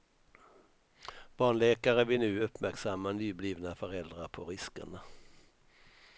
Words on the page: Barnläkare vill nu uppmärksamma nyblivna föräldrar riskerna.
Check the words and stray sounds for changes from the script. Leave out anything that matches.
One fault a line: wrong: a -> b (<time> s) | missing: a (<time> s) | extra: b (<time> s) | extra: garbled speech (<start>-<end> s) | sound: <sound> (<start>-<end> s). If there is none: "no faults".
extra: på (4.3 s)